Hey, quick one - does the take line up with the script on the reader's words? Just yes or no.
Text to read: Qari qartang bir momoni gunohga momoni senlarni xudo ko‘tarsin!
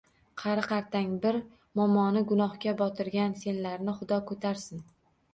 no